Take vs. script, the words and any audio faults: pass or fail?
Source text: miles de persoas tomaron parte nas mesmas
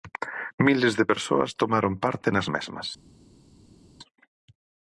pass